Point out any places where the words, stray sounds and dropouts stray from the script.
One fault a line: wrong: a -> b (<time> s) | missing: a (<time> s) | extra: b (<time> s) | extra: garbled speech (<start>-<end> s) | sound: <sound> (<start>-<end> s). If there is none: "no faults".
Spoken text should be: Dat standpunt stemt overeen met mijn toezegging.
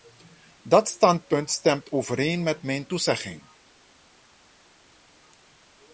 no faults